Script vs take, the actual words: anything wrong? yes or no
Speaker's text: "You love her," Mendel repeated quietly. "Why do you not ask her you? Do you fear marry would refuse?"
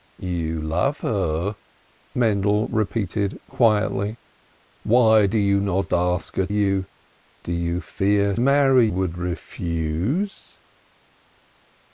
no